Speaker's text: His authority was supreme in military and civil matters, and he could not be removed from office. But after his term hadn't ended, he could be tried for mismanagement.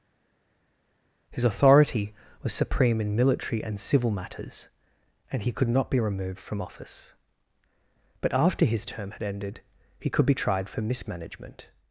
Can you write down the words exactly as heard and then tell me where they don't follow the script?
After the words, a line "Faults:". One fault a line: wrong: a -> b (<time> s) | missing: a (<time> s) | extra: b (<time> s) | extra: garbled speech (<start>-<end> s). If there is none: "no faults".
His authority was supreme in military and civil matters, and he could not be removed from office. But after his term had ended, he could be tried for mismanagement.
Faults:
wrong: hadn't -> had (9.1 s)